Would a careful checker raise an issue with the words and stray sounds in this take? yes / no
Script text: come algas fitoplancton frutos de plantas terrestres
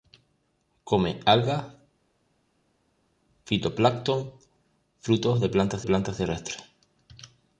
yes